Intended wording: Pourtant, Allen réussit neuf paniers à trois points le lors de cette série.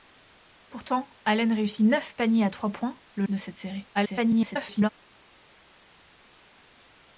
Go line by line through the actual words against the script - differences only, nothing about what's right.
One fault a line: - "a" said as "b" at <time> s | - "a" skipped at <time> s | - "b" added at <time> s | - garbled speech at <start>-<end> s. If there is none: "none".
- "lors" skipped at 3.3 s
- garbled speech at 3.9-4.9 s